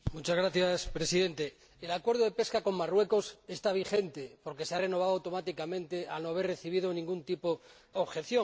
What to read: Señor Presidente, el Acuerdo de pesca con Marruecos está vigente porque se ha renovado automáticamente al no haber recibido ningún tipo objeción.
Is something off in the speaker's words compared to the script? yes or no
no